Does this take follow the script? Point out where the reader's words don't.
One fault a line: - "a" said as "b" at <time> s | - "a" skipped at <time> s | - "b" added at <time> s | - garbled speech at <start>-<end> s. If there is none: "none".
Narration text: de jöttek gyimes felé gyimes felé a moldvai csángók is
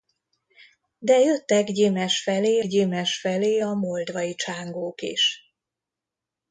none